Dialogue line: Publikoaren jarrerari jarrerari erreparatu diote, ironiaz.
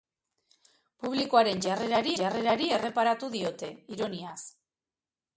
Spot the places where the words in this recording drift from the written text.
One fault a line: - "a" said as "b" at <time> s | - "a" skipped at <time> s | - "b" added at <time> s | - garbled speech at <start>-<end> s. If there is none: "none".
none